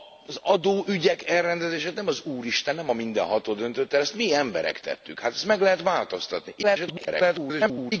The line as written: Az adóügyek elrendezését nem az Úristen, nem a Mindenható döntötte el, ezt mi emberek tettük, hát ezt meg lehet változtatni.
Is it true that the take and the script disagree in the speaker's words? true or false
true